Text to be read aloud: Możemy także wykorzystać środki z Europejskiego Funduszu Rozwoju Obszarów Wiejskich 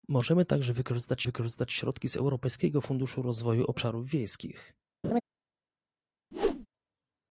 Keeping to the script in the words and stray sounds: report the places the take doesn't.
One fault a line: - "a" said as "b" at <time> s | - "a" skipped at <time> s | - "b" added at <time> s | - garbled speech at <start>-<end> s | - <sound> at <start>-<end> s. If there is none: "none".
- "wykorzystać" added at 1.2 s
- laugh at 5.0-5.2 s
- whoosh at 6.3-6.7 s